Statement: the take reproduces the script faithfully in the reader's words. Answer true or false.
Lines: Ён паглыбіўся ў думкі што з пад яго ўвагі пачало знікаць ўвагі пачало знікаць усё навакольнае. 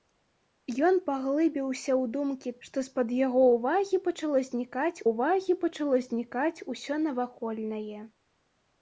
true